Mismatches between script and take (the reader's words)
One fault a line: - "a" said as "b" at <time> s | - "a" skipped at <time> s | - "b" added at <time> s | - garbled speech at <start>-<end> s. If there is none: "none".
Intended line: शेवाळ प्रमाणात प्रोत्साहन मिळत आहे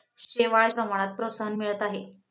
none